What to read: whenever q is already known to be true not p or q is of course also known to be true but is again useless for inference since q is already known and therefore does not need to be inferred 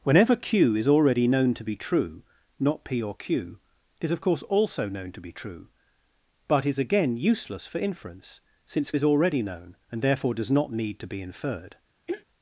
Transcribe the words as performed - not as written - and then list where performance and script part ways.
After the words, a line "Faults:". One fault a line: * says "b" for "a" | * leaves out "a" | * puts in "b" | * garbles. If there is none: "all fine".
whenever q is already known to be true not p or q is of course also known to be true but is again useless for inference since is already known and therefore does not need to be inferred
Faults:
* leaves out "q"